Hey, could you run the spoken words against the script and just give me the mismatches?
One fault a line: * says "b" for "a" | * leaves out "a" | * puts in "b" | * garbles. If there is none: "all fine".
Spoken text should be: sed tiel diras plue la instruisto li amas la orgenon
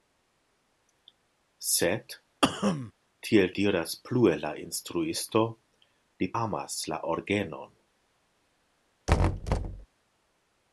all fine